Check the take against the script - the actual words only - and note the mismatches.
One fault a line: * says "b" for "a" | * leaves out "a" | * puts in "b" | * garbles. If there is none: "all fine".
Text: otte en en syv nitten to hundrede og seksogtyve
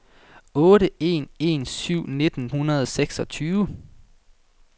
* leaves out "to"